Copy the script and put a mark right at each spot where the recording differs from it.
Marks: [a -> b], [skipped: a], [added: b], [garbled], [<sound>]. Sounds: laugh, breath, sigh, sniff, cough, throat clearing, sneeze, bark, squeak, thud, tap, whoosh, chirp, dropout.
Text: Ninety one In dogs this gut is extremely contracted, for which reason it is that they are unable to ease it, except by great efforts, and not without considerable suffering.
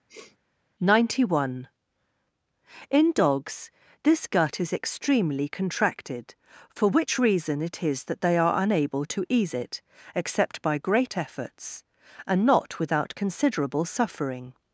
[sniff] Ninety one In dogs this gut is extremely contracted, for which reason it is that they are unable to ease it, except by great efforts, and not without considerable suffering.